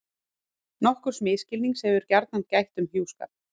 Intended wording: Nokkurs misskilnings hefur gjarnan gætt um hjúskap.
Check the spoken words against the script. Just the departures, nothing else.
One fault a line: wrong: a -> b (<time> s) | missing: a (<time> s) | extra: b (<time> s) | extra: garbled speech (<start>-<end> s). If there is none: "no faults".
no faults